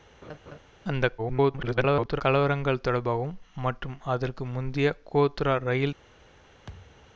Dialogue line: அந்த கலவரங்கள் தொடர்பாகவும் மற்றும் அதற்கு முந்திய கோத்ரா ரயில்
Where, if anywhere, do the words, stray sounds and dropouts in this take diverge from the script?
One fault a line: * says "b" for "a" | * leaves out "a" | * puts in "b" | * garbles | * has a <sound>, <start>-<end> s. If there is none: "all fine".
* has a laugh, 0.2-0.6 s
* garbles
* has a thud, 6.7-7.1 s